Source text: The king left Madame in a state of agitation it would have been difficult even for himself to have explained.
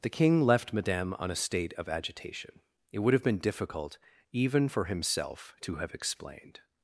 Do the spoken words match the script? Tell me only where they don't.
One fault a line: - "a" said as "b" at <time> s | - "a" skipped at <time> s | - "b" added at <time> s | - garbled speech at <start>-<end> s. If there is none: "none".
- "in" said as "on" at 1.2 s